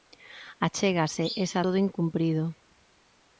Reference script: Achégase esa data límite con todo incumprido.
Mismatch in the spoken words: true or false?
true